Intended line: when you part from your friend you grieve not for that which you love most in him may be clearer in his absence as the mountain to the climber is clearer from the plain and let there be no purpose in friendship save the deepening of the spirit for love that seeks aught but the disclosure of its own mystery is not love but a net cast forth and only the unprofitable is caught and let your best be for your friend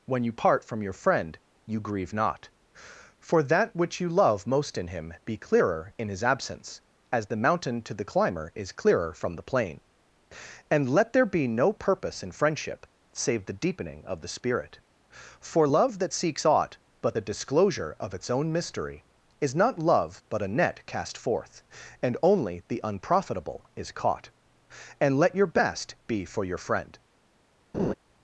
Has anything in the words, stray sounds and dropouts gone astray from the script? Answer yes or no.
yes